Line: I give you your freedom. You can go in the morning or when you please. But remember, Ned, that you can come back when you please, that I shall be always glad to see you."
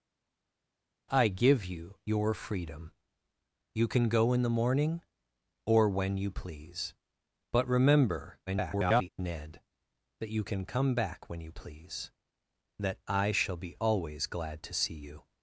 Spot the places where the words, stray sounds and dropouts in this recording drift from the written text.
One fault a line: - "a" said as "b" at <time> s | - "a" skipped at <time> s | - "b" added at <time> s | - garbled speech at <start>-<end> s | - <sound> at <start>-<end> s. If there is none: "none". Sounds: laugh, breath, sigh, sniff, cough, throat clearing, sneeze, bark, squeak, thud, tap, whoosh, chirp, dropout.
- garbled speech at 8.5-9.1 s